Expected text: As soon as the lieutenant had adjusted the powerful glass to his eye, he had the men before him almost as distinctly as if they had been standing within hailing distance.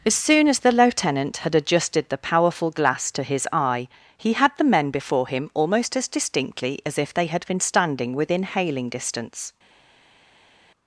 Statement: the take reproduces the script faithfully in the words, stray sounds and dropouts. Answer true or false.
true